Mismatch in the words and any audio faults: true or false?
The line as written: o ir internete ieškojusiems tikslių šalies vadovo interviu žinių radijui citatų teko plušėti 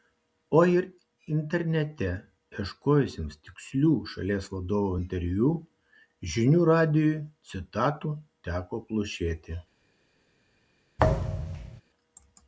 true